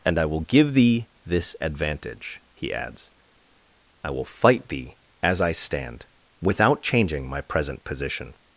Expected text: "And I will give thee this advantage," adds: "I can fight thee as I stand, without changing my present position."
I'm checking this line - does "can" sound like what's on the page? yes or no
no